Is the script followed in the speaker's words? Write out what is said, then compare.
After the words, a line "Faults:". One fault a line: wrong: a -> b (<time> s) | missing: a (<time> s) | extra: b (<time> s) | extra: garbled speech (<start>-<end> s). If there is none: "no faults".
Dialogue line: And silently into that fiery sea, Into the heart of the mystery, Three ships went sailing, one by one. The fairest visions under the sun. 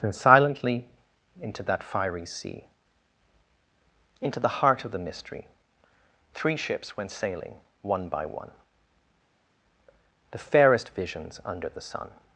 And silently into that fiery sea, Into the heart of the mystery, Three ships went sailing, one by one. The fairest visions under the sun.
Faults:
no faults